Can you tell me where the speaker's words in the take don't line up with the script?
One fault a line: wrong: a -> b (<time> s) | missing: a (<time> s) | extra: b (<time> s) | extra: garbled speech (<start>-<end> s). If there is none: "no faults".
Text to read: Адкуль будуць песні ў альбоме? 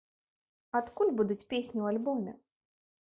no faults